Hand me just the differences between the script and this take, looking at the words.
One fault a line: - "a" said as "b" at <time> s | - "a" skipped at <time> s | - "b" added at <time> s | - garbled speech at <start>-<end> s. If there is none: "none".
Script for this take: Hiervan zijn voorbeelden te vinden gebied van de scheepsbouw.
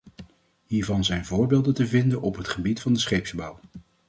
- "op het" added at 2.2 s